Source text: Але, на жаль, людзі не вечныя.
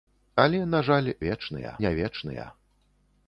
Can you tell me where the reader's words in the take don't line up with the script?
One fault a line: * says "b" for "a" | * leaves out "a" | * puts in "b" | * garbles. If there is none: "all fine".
* says "вечныя" for "людзі"